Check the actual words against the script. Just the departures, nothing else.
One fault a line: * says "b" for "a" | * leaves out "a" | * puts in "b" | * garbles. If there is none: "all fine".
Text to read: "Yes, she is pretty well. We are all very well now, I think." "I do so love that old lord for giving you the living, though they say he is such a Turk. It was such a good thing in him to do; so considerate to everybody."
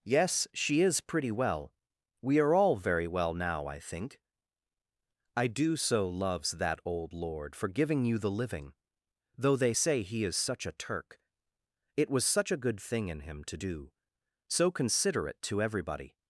* says "loves" for "love"